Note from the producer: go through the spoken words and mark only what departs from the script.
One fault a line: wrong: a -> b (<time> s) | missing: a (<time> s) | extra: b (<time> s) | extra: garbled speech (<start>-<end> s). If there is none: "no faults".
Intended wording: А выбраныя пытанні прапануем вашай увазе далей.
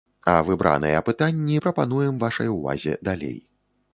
no faults